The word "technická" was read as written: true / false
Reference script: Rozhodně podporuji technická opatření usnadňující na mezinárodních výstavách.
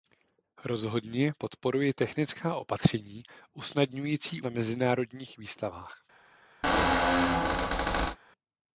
true